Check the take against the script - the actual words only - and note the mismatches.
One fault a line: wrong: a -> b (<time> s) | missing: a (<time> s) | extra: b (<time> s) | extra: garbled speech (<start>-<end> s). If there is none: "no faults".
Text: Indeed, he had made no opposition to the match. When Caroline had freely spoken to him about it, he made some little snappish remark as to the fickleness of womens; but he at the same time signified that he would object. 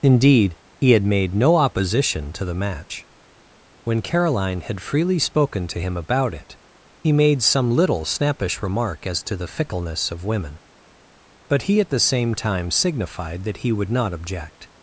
wrong: womens -> women (10.2 s)
extra: not (13.9 s)